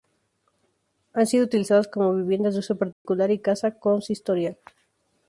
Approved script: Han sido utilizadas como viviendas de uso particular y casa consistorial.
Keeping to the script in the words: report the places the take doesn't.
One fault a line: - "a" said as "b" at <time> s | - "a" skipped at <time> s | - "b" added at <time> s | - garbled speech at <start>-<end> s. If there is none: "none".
none